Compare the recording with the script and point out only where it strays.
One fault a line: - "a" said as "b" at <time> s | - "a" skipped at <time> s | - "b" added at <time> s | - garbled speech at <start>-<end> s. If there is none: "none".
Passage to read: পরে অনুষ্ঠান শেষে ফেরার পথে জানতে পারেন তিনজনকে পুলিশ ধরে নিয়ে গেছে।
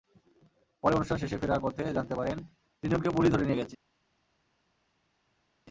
none